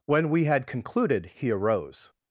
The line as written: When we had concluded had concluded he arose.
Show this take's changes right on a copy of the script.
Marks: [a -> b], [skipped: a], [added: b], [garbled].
When we had concluded [skipped: had concluded] he arose.